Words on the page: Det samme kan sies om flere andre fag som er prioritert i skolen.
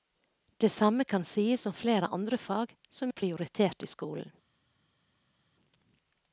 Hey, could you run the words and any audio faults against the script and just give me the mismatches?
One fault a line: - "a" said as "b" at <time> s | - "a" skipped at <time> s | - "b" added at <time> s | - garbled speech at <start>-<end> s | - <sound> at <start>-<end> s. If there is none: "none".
none